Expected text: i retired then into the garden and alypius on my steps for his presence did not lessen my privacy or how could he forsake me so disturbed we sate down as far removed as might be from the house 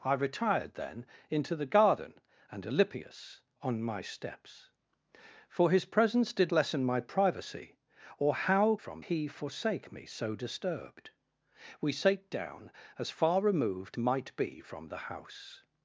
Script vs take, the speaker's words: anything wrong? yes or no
yes